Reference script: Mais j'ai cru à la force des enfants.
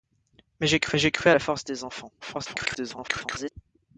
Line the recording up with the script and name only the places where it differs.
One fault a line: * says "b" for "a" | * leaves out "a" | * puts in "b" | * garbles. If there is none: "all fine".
* puts in "j'ai cru"
* garbles